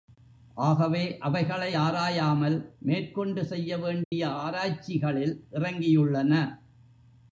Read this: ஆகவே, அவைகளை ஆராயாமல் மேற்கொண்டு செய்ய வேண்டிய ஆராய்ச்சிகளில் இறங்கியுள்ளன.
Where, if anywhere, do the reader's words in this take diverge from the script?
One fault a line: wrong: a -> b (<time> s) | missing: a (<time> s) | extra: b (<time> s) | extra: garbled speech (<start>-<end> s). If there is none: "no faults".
no faults